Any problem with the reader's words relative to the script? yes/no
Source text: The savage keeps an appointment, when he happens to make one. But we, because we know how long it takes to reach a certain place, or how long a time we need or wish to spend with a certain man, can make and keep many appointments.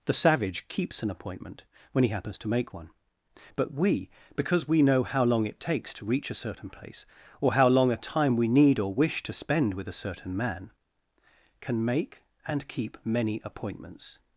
no